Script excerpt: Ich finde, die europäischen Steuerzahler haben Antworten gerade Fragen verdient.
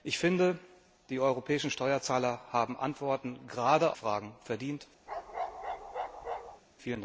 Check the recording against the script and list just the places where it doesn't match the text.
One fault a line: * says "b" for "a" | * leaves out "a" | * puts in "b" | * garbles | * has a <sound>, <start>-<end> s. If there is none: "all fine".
* has a bark, 5.1-6.6 s